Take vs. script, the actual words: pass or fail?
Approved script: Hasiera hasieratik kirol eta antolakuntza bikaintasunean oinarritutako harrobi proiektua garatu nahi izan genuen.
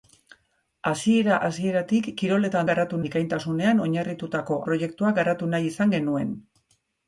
fail